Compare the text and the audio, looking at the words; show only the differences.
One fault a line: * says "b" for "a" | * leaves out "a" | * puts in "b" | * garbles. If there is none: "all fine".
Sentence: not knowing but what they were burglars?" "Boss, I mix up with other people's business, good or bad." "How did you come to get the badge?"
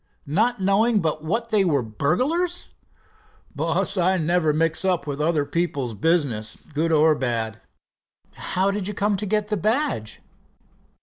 * puts in "never"